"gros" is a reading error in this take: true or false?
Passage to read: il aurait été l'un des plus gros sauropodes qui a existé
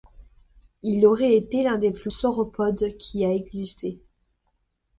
true